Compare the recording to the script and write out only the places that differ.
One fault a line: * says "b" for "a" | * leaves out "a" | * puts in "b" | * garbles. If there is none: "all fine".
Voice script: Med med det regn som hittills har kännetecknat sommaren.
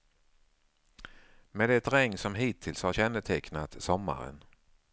* leaves out "med"